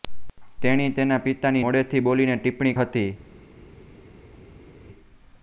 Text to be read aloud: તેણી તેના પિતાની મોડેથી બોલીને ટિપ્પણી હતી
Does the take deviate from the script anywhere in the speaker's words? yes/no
no